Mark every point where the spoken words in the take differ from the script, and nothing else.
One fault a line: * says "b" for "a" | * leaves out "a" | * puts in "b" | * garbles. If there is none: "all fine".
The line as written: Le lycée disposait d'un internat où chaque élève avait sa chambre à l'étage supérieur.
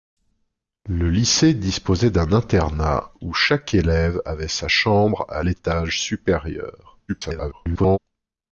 * garbles